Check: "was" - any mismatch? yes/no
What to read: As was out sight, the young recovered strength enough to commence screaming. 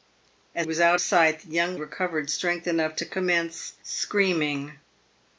no